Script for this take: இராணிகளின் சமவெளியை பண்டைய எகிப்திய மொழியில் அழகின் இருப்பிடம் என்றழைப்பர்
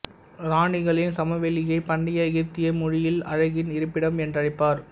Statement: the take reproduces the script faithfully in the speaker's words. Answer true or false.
true